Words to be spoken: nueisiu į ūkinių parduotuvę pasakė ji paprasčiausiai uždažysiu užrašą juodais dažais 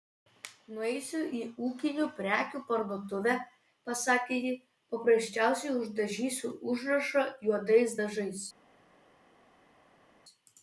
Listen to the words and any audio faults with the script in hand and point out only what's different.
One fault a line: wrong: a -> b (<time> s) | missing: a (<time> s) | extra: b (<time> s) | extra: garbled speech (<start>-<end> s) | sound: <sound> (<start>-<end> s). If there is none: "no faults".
extra: prekių (2.2 s)